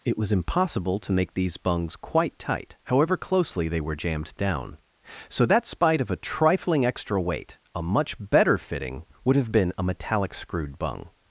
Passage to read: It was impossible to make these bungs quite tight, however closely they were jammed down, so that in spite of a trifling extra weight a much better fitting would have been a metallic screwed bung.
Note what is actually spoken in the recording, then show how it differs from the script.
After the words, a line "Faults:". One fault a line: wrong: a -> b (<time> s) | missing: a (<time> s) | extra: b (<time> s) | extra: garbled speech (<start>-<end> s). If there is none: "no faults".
It was impossible to make these bungs quite tight, however closely they were jammed down, so that spite of a trifling extra weight a much better fitting would have been a metallic screwed bung.
Faults:
missing: in (5.7 s)